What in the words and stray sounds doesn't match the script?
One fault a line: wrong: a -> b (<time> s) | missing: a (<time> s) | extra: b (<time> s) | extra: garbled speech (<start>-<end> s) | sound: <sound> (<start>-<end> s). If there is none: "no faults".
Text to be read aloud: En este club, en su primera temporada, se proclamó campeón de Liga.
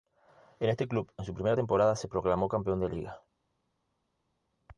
no faults